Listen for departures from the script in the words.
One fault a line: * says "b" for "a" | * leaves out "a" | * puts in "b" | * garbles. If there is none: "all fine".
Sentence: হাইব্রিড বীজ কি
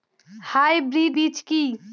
all fine